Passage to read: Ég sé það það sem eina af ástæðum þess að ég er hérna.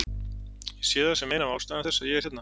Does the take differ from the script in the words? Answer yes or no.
yes